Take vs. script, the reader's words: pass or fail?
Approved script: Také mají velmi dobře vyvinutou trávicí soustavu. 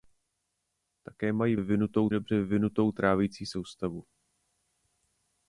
fail